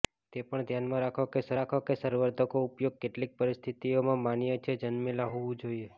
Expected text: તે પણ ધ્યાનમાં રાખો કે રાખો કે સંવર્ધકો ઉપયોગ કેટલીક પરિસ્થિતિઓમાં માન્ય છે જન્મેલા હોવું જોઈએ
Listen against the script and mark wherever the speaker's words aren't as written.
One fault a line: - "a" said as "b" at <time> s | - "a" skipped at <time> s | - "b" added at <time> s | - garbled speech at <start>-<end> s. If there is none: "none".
none